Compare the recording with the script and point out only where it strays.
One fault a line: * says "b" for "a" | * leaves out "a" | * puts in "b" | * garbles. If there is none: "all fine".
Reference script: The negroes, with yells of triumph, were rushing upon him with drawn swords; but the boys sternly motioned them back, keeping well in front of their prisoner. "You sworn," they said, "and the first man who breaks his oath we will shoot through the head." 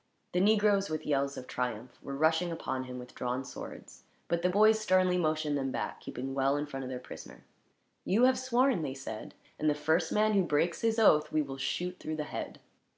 * puts in "have"